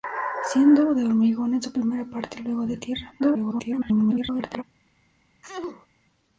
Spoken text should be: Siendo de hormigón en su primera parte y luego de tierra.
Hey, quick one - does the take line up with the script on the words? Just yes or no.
no